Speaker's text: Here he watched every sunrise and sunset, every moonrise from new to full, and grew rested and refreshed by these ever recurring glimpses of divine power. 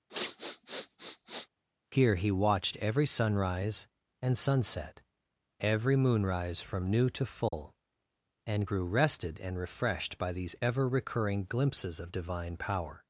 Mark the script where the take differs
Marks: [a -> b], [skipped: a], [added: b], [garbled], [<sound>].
[sniff] Here he watched every sunrise and sunset, every moonrise from new to full, [dropout] and grew rested and refreshed by these ever recurring glimpses of divine power.